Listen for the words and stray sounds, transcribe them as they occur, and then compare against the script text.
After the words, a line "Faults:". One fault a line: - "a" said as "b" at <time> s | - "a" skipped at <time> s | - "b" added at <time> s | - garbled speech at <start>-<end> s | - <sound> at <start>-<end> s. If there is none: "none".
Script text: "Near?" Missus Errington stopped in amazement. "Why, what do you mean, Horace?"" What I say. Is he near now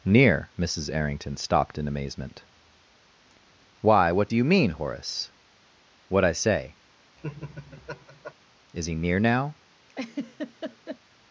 "Near?" Missus Errington stopped in amazement. "Why, what do you mean, Horace?"" What I say. Is he near now
Faults:
- laugh at 7.2-8.3 s
- laugh at 9.9-11.0 s